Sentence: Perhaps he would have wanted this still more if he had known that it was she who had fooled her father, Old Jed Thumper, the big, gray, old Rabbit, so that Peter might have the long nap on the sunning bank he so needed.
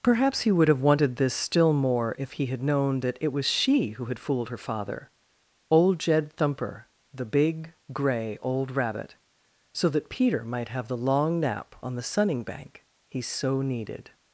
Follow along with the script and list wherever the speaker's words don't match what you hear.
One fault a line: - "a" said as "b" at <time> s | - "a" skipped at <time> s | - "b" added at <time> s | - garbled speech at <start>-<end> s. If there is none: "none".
none